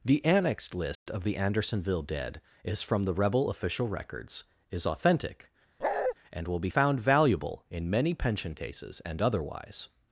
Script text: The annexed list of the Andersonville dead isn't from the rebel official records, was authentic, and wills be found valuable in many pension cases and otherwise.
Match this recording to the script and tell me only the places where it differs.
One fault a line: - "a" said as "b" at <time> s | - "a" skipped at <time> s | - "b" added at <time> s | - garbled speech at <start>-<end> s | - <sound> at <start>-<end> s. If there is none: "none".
- dropout at 0.9-1.1 s
- "isn't" said as "is" at 2.6 s
- "was" said as "is" at 4.7 s
- bark at 5.8-6.1 s
- "wills" said as "will" at 6.5 s